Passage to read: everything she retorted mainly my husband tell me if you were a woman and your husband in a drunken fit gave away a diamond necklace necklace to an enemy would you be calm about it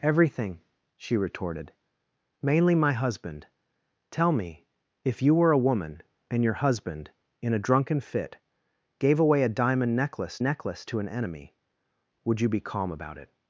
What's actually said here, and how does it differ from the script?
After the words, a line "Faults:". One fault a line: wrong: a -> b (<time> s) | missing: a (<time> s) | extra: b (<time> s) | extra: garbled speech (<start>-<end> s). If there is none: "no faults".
everything she retorted mainly my husband tell me if you were a woman and your husband in a drunken fit gave away a diamond necklace necklace to an enemy would you be calm about it
Faults:
no faults